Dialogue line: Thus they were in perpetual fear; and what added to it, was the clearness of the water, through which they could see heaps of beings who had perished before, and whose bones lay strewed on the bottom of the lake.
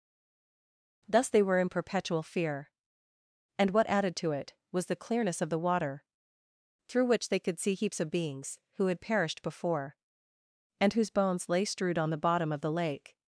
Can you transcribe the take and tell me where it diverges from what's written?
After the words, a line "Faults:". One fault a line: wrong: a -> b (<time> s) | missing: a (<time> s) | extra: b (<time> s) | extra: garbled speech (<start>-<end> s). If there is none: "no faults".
Thus they were in perpetual fear; and what added to it, was the clearness of the water, through which they could see heaps of beings who had perished before, and whose bones lay strewed on the bottom of the lake.
Faults:
no faults